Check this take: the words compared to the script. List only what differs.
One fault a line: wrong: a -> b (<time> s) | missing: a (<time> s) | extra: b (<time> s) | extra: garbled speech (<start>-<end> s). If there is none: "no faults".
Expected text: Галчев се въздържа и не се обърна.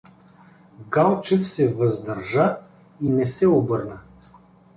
no faults